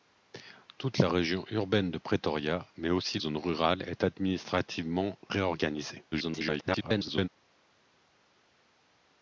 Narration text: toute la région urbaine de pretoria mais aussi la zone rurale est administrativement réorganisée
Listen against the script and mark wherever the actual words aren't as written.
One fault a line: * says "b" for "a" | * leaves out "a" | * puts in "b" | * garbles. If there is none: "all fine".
* leaves out "la"
* garbles